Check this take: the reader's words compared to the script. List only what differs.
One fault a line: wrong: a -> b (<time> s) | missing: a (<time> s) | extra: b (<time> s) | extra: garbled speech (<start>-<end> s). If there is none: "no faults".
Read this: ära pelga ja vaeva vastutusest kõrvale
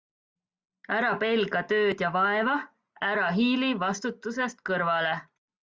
extra: tööd (1.7 s)
extra: ära hiili (3.1 s)